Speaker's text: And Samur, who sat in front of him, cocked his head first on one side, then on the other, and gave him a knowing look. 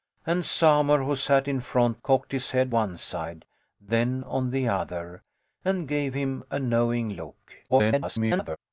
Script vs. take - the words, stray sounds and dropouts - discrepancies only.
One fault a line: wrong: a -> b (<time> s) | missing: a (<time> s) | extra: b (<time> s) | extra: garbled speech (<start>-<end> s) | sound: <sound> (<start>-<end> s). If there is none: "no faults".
missing: of him (2.0 s)
missing: first on (2.7 s)
extra: garbled speech (7.7-8.6 s)